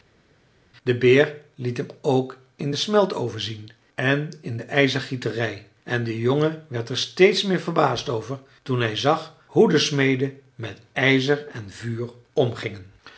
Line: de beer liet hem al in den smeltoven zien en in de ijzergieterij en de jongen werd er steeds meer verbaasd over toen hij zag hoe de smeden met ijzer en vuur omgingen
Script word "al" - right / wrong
wrong